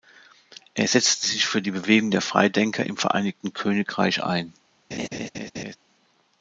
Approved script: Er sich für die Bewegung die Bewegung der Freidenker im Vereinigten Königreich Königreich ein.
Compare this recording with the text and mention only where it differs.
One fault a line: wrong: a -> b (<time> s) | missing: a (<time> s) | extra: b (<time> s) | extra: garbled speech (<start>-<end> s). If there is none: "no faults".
extra: setzte (0.8 s)
missing: die Bewegung (2.1 s)
missing: Königreich (4.2 s)